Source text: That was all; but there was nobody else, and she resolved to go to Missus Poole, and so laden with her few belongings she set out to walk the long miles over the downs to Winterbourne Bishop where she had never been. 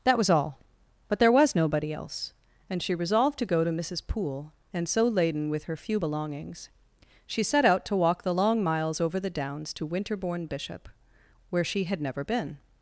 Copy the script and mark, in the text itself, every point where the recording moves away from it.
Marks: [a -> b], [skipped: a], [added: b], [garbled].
That was all; but there was nobody else, and she resolved to go to Missus Poole, and so laden with her few belongings she set out to walk the long miles over the downs to Winterbourne Bishop where she had never been.